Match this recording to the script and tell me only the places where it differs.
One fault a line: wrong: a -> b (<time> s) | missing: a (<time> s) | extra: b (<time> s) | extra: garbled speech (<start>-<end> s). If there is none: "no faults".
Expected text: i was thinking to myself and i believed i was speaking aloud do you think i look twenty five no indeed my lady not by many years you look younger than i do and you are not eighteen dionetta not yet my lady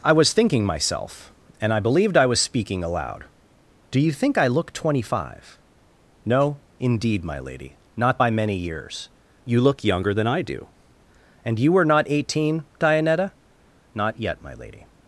missing: to (0.7 s)
wrong: are -> were (11.7 s)